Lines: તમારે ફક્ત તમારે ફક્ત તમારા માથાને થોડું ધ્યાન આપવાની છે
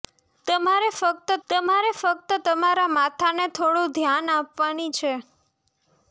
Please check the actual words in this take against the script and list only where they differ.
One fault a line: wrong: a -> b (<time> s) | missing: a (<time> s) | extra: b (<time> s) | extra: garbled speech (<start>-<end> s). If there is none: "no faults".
no faults